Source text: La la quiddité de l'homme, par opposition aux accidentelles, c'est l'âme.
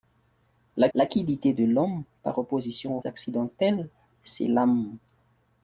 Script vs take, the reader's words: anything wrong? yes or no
no